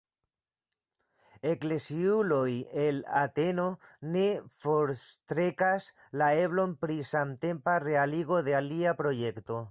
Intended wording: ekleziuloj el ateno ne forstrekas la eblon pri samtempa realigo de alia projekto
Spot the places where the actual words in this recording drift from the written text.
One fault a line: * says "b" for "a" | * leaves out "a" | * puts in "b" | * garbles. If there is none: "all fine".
all fine